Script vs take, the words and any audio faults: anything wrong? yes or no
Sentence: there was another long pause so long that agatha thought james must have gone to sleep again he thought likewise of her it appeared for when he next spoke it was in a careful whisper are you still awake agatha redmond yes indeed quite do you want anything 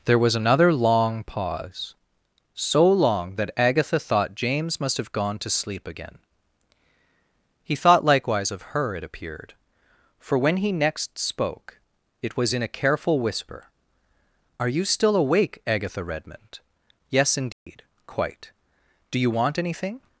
yes